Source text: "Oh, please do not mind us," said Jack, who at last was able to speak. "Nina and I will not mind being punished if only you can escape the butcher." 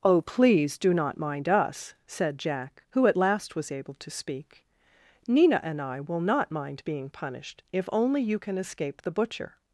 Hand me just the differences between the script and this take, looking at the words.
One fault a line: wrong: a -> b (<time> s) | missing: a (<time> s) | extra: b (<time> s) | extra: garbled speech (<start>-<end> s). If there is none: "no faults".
no faults